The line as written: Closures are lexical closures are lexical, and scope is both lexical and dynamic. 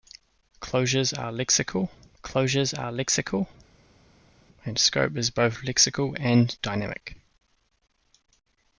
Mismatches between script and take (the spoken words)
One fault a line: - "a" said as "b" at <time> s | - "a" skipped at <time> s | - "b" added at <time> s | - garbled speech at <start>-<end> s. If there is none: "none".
none